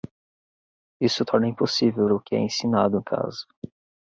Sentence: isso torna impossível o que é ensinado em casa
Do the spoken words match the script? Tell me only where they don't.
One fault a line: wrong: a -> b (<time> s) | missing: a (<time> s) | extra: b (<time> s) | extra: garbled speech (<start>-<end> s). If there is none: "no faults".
no faults